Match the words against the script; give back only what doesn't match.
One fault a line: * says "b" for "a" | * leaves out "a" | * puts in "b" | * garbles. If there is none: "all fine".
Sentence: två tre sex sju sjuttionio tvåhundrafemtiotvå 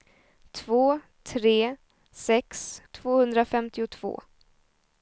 * leaves out "sju sjuttionio"